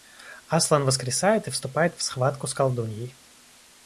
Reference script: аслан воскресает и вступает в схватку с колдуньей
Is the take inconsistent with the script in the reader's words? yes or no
no